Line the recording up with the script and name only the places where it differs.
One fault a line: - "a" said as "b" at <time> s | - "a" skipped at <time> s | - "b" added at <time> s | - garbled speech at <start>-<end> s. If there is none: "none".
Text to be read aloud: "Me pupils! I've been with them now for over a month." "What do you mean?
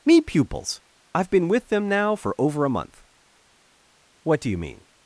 none